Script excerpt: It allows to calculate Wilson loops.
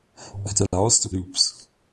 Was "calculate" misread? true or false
true